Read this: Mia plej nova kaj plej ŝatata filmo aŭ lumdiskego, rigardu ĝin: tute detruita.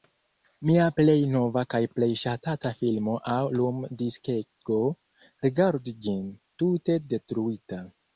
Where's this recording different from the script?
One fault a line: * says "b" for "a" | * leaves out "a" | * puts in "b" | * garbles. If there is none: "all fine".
all fine